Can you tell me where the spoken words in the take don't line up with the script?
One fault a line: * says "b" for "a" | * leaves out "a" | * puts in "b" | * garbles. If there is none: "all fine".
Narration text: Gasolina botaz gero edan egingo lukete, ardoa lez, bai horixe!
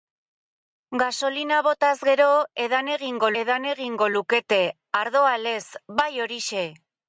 * puts in "edan egingo"